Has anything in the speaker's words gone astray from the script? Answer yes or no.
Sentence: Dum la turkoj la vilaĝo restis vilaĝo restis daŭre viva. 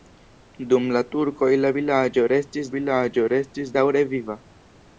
no